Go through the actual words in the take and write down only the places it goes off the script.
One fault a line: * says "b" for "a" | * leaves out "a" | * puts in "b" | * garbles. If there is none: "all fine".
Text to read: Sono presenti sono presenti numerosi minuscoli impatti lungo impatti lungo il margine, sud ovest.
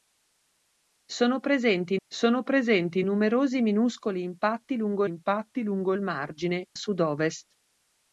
all fine